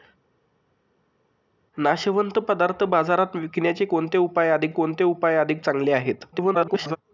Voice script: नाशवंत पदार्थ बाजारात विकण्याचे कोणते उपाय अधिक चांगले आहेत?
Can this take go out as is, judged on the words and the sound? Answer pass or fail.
fail